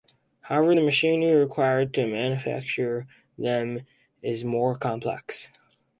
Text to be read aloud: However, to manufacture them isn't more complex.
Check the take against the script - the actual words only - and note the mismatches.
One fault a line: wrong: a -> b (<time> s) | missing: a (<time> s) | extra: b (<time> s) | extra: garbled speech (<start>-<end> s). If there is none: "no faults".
extra: the machinery required (0.7 s)
wrong: isn't -> is (4.2 s)